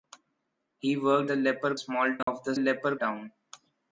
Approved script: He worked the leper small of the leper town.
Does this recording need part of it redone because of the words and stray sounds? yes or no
yes